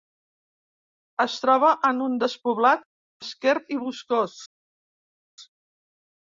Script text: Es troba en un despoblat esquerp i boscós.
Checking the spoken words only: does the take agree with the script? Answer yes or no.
yes